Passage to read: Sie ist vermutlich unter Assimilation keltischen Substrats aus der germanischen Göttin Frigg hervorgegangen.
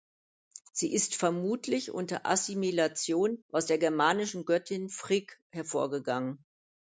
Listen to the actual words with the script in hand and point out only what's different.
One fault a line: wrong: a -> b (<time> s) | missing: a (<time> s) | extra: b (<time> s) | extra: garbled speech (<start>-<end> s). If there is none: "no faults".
missing: keltischen Substrats (3.4 s)